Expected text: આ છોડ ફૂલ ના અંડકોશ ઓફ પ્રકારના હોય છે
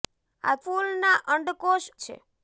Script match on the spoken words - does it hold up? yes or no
no